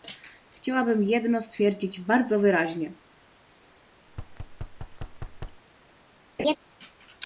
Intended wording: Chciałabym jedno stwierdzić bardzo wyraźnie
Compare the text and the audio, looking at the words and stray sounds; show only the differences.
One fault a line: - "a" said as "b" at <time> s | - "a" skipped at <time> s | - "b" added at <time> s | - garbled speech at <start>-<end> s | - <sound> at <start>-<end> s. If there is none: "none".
- thud at 4.1-5.6 s
- laugh at 6.4-6.6 s